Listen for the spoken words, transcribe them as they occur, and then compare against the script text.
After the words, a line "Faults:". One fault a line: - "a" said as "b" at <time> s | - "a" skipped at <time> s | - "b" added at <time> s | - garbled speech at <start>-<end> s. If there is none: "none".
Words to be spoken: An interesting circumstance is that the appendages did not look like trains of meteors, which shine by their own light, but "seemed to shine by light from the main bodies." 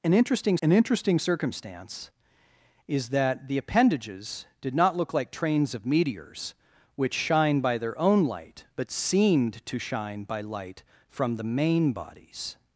An interesting an interesting circumstance is that the appendages did not look like trains of meteors, which shine by their own light, but "seemed to shine by light from the main bodies."
Faults:
- "an interesting" added at 0.6 s